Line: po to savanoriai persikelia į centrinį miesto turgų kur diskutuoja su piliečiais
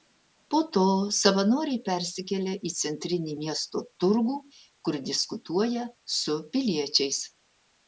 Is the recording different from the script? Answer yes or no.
no